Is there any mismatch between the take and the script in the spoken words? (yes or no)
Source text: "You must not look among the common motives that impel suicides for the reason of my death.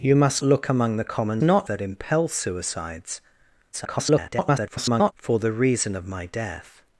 yes